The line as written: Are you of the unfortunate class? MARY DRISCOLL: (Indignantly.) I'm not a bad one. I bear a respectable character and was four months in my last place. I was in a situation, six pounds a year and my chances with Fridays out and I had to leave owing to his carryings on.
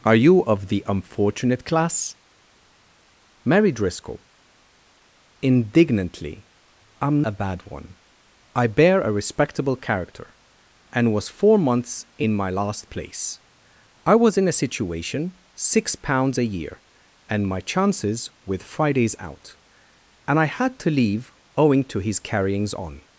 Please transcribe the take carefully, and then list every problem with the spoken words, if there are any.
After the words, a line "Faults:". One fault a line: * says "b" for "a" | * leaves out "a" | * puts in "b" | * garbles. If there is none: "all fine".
Are you of the unfortunate class? MARY DRISCOLL: (Indignantly.) I'm a bad one. I bear a respectable character and was four months in my last place. I was in a situation, six pounds a year and my chances with Fridays out and I had to leave owing to his carryings on.
Faults:
* leaves out "not"